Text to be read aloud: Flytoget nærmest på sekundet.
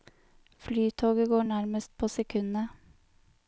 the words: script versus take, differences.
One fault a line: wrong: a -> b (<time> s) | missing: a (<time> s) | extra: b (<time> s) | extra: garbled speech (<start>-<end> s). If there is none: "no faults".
extra: går (1.3 s)